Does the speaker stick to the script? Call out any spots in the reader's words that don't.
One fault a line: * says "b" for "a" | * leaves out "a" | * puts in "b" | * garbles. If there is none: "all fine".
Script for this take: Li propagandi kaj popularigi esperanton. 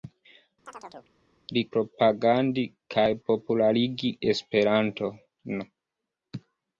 all fine